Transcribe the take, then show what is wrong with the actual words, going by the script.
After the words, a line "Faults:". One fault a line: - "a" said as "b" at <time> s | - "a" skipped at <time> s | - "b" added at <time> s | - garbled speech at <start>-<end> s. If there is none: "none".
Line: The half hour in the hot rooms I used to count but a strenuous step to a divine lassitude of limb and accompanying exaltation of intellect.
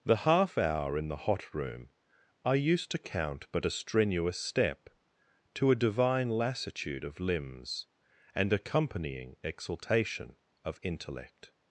The half hour in the hot room I used to count but a strenuous step to a divine lassitude of limbs and accompanying exaltation of intellect.
Faults:
- "rooms" said as "room" at 1.5 s
- "limb" said as "limbs" at 7.2 s